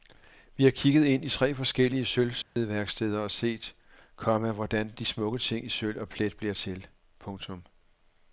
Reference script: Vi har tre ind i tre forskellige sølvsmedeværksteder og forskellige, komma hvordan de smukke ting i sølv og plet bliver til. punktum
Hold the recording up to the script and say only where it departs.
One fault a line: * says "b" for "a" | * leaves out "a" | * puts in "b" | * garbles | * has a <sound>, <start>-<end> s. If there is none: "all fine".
* says "kigget" for "tre"
* has a dropout, 2.4-2.6 s
* says "set" for "forskellige"